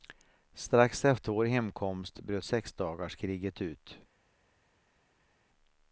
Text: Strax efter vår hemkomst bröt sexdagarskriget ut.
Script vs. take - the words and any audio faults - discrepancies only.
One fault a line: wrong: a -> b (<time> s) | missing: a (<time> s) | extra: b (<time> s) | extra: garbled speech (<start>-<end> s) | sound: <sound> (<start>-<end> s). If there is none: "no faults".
no faults